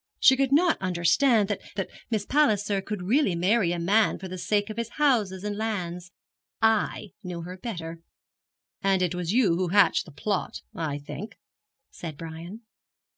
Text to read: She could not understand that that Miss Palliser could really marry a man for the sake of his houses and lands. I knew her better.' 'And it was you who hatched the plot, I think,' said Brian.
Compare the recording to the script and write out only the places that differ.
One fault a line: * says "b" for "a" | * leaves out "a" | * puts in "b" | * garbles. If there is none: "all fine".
all fine